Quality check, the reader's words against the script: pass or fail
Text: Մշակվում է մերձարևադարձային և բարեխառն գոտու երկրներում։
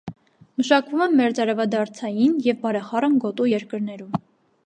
pass